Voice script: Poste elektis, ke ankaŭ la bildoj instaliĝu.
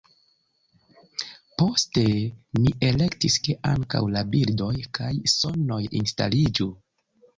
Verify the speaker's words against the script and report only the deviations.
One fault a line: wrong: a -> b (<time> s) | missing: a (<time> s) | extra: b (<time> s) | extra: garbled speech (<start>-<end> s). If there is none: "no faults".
extra: mi (2.6 s)
extra: kaj sonoj (5.0 s)